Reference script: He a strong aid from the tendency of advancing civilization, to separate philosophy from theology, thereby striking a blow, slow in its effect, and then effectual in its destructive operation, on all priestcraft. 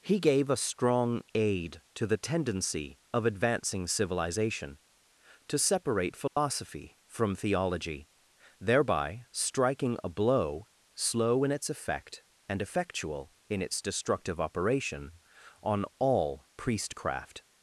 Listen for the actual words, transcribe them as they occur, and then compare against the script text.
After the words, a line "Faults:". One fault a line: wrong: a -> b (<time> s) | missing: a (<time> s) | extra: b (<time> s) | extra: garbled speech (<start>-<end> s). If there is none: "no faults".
He gave a strong aid to the tendency of advancing civilization, to separate philosophy from theology, thereby striking a blow, slow in its effect, and effectual in its destructive operation, on all priestcraft.
Faults:
extra: gave (0.2 s)
wrong: from -> to (1.9 s)
missing: then (12.6 s)